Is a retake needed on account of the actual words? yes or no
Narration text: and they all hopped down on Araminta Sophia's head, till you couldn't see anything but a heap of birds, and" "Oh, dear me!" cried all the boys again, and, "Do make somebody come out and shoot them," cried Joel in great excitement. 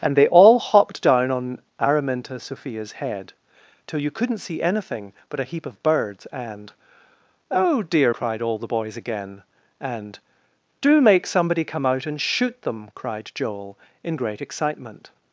yes